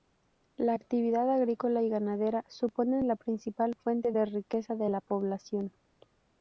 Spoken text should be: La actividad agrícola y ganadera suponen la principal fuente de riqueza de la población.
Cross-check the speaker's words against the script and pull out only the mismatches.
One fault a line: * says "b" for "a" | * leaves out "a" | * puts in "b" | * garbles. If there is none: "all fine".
all fine